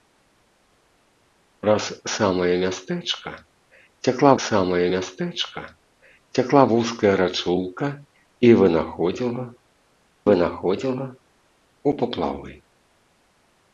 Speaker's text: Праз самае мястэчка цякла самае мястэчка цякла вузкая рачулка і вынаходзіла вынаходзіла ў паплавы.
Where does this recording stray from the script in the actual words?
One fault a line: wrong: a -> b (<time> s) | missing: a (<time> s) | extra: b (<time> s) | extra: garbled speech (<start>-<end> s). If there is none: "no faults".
no faults